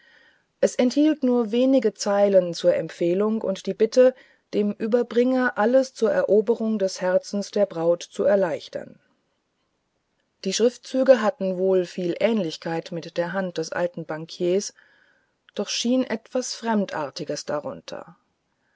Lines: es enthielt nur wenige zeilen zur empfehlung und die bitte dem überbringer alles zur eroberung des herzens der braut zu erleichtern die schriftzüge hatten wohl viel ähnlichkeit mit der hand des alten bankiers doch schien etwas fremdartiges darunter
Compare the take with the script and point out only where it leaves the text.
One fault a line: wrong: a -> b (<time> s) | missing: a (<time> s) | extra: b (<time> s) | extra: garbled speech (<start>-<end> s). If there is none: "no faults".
no faults